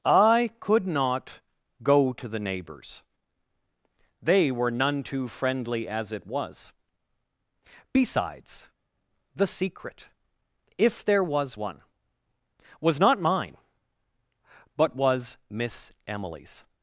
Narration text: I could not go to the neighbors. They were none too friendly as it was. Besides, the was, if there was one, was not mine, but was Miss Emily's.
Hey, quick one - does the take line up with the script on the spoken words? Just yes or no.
no